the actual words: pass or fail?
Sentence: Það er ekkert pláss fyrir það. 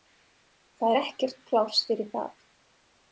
pass